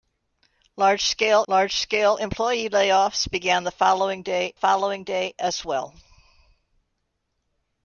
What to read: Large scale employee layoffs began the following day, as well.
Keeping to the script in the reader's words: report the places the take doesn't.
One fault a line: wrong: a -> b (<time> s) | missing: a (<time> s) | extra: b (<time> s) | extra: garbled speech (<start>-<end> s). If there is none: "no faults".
extra: large scale (1.5 s)
extra: following day (4.5 s)